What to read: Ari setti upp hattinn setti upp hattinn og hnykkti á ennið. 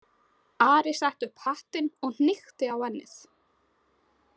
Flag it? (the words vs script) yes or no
yes